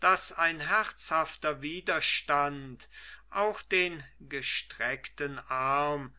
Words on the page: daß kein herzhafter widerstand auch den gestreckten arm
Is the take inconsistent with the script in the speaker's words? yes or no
yes